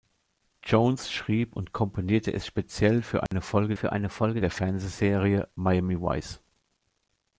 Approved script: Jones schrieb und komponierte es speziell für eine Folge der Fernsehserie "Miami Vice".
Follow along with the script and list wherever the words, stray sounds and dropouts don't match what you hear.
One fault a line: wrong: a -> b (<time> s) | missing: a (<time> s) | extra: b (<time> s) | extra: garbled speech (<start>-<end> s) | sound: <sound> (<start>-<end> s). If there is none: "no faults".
sound: dropout (3.3-3.3 s)
extra: für eine Folge (3.7 s)